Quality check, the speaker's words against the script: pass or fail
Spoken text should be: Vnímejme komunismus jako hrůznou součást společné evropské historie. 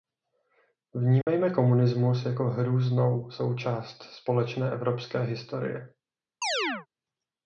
pass